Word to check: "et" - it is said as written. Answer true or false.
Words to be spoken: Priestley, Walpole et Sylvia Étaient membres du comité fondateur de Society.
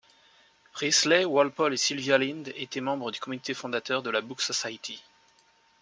true